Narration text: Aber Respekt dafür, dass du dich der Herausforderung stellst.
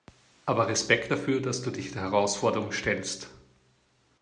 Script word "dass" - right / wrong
right